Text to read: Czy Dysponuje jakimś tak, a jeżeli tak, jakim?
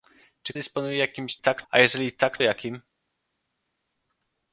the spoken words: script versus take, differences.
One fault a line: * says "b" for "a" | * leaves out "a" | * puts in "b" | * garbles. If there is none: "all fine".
all fine